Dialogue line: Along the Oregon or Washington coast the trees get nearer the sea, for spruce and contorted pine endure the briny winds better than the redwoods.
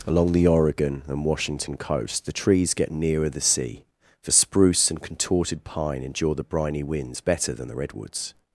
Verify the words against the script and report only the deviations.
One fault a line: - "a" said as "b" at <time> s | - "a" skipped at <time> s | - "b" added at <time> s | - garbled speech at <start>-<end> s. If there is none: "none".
- "or" said as "and" at 1.1 s